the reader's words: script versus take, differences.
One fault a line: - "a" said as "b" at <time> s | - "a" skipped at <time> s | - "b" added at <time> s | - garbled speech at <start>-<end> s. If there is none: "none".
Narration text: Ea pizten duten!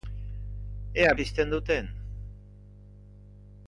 none